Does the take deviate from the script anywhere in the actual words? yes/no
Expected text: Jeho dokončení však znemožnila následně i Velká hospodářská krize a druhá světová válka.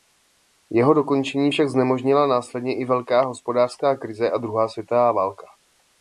no